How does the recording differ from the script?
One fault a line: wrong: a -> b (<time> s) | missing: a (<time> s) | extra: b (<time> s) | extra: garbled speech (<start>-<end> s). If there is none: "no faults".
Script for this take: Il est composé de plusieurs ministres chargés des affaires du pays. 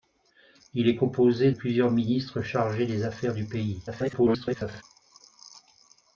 missing: de (1.5 s)
extra: garbled speech (3.9-4.8 s)